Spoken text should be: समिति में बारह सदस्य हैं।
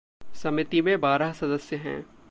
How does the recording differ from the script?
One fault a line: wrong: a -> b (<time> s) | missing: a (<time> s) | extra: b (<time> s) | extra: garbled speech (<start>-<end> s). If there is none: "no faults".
no faults